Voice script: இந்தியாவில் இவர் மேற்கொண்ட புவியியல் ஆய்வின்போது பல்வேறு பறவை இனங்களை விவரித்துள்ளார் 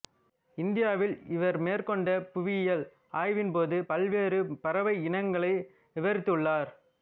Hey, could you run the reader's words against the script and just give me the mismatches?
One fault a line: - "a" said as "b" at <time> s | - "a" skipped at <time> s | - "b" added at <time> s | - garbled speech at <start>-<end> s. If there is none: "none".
none